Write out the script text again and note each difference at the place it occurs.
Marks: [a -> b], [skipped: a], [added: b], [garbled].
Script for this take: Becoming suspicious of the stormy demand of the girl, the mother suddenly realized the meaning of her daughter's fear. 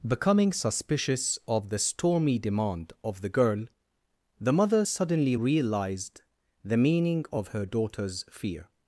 Becoming suspicious of the stormy demand of the girl, the mother suddenly realized the meaning of her daughter's fear.